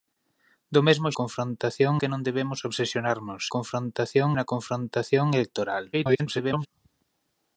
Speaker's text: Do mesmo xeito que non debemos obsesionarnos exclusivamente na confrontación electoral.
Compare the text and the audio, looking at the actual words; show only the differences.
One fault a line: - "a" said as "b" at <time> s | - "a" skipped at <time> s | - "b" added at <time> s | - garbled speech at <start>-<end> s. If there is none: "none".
- "xeito" said as "confrontación" at 1.2 s
- "exclusivamente" said as "confrontación" at 3.5 s
- garbled speech at 5.9-6.7 s